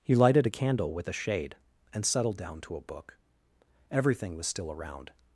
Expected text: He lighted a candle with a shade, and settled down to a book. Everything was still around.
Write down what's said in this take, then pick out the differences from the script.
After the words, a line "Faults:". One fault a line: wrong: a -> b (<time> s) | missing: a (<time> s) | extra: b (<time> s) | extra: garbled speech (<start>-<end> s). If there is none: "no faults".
He lighted a candle with a shade, and settled down to a book. Everything was still around.
Faults:
no faults